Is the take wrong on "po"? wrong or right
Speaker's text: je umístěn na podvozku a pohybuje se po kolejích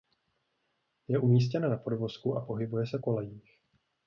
wrong